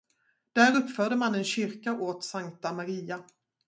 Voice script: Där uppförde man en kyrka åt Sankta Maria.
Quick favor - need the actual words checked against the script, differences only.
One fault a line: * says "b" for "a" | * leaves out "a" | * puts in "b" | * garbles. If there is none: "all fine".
all fine